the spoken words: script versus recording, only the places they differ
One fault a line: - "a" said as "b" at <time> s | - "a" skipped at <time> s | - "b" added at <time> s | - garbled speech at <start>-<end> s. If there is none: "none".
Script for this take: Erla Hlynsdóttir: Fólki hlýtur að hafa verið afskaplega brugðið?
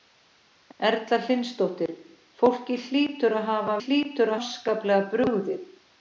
- "verið" said as "hlýtur" at 3.8 s